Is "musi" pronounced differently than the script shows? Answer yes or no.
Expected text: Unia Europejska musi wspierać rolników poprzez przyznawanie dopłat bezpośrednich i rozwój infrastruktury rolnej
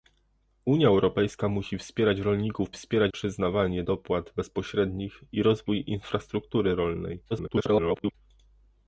no